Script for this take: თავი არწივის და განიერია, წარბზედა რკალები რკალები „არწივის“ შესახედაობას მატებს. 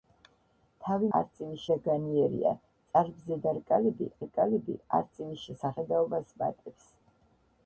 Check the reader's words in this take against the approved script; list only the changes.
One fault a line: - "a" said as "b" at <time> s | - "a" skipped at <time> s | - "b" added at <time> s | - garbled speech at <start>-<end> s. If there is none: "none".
none